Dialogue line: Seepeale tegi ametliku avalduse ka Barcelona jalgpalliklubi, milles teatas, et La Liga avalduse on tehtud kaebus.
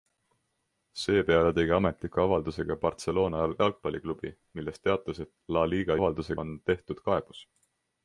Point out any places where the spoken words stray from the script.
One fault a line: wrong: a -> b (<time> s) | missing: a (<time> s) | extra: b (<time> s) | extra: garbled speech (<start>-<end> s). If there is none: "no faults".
no faults